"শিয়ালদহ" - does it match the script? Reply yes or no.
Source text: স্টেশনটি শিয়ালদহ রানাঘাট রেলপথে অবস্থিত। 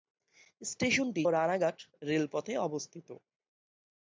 no